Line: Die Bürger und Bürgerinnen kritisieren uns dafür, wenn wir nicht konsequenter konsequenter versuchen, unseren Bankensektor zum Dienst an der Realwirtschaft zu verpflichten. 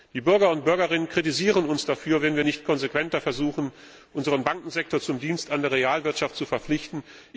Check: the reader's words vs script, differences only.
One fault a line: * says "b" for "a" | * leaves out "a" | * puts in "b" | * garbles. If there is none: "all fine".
* leaves out "konsequenter"